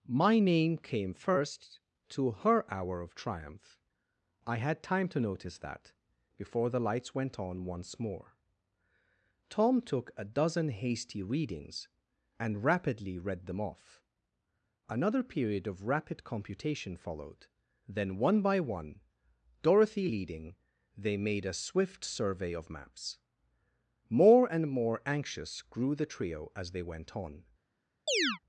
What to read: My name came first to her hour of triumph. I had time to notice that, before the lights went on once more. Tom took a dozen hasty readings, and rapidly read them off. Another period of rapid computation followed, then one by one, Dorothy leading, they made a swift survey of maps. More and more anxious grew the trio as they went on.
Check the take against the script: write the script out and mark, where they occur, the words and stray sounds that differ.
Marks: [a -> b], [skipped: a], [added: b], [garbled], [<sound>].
My name came first to her hour of triumph. I had time to notice that, before the lights went on once more. Tom took a dozen hasty readings, and rapidly read them off. Another period of rapid computation followed, then one by one, Dorothy leading, they made a swift survey of maps. More and more anxious grew the trio as they went on. [chirp]